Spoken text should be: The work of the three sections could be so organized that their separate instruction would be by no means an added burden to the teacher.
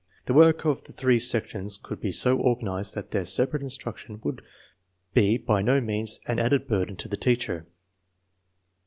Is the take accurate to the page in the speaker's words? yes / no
yes